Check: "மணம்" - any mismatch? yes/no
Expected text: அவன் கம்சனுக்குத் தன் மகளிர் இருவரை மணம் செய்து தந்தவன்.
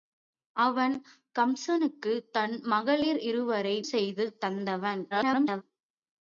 yes